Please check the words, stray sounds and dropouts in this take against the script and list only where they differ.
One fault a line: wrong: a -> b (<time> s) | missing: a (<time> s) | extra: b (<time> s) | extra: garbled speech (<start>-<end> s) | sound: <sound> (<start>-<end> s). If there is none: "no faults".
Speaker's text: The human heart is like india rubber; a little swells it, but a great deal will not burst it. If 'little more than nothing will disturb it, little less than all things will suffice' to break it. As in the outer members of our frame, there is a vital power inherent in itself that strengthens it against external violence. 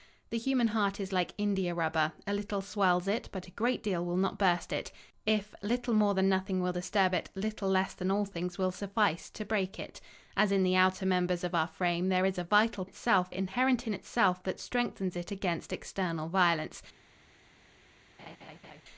wrong: power -> itself (12.8 s)
sound: laugh (18.2-18.8 s)